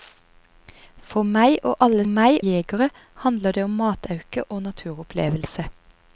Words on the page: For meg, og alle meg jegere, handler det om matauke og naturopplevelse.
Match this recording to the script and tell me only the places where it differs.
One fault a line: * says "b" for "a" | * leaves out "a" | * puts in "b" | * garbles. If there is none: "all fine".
all fine